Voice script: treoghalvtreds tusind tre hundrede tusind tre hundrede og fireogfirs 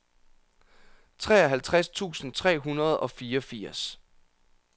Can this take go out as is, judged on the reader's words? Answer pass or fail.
fail